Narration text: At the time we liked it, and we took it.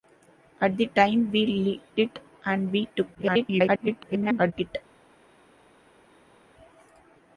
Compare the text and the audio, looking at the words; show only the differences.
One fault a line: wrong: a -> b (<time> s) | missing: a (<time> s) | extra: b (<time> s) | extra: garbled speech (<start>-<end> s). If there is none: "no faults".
missing: liked (1.8 s)
extra: garbled speech (3.1-4.5 s)